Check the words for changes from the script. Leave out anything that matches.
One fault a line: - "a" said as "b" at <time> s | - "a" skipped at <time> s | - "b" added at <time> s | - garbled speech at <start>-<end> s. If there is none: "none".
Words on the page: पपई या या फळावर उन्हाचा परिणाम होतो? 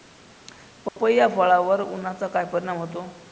- "या" skipped at 1.3 s
- "काय" added at 2.3 s